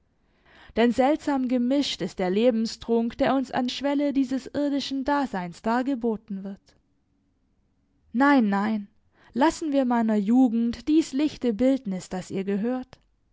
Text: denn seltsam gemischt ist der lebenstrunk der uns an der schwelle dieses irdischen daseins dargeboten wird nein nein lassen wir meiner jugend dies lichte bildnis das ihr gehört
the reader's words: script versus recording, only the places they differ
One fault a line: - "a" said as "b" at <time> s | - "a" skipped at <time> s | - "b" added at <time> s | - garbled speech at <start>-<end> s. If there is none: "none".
- "der" skipped at 3.7 s